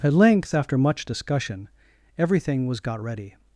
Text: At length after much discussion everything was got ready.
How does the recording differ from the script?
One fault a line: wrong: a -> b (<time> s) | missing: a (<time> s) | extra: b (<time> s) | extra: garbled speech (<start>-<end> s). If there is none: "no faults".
no faults